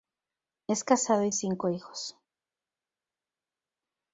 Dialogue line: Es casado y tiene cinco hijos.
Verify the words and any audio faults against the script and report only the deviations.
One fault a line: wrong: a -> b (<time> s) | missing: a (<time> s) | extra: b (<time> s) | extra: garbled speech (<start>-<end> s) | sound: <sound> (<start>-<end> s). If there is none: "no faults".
missing: tiene (1.3 s)